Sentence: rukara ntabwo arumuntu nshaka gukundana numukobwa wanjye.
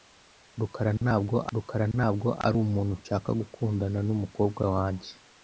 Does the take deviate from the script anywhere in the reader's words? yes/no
yes